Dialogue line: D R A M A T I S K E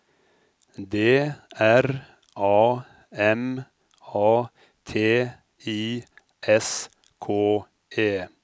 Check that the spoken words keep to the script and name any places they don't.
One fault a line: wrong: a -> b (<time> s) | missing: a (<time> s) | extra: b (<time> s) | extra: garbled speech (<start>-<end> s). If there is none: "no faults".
no faults